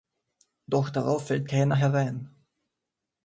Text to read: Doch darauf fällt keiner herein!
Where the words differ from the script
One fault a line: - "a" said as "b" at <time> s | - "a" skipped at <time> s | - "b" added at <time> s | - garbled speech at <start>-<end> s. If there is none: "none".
none